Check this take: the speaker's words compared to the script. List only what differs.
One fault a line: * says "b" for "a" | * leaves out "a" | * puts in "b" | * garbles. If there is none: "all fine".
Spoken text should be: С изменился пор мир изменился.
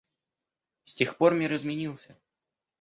* says "тех" for "изменился"